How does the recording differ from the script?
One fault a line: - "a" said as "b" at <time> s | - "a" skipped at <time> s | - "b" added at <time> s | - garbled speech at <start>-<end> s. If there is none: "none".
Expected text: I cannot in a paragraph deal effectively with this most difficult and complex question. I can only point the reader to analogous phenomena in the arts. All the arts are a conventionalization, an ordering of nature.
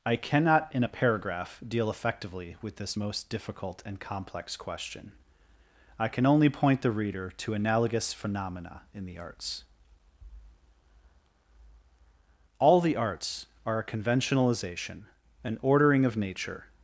none